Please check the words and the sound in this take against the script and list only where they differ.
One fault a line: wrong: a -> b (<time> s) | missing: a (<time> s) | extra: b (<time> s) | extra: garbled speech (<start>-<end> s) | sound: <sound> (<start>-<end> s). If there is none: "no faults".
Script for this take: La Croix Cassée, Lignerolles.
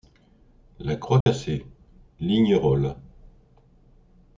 sound: dropout (1.2-1.3 s)